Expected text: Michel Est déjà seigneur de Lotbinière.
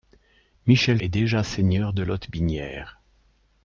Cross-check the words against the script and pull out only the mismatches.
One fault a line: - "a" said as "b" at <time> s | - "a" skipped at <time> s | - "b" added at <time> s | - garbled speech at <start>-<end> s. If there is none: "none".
none